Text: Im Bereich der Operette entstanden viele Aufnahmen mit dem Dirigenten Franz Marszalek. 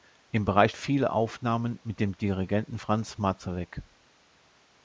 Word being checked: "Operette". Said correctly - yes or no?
no